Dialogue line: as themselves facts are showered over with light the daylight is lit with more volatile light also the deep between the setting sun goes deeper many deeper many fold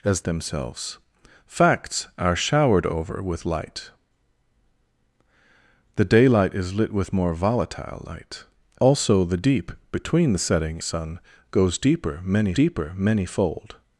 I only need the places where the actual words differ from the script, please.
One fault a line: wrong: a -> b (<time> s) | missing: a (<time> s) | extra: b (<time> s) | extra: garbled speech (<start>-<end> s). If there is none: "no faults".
no faults